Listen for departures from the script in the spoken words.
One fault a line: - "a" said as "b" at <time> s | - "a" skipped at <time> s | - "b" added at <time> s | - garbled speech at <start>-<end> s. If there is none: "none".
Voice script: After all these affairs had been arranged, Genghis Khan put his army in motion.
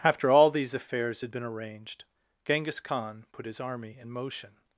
none